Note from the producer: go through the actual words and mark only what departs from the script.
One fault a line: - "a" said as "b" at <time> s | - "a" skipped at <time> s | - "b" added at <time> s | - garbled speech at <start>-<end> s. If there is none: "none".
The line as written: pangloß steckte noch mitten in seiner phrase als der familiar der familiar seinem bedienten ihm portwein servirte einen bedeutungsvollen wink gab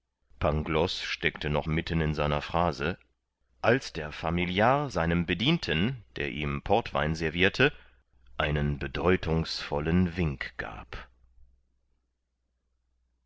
- "der familiar" skipped at 4.9 s
- "der" added at 6.2 s